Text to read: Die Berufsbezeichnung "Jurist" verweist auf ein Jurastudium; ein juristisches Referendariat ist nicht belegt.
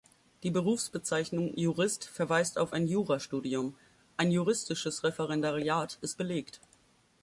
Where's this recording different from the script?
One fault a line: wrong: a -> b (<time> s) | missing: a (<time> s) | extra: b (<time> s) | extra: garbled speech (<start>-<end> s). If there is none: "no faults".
missing: nicht (6.2 s)